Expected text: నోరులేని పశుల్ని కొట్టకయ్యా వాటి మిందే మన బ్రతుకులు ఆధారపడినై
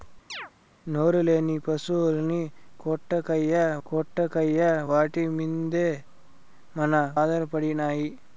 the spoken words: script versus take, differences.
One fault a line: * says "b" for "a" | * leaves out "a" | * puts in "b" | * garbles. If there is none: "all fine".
* puts in "కొట్టకయ్యా"
* leaves out "బ్రతుకులు"